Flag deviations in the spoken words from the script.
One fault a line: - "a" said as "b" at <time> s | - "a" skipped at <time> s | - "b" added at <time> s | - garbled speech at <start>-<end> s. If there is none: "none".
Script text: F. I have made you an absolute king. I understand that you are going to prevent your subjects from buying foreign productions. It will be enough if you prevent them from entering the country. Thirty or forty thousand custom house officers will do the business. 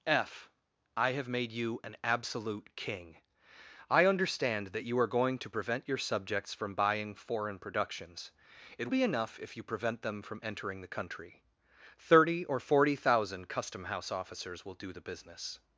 - "will" skipped at 8.9 s